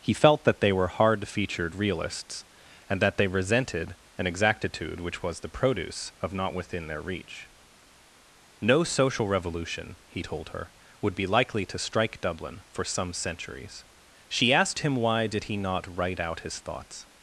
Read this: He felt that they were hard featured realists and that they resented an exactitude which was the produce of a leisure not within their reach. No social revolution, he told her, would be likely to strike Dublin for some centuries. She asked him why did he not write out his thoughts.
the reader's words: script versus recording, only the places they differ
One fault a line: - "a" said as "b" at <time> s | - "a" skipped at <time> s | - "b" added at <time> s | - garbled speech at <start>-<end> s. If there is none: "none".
- "a leisure" skipped at 6.3 s